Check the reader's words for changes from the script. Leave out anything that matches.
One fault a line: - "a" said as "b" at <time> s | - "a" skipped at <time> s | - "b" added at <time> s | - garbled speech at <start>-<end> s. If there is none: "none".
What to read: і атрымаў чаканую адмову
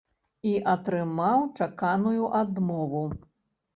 none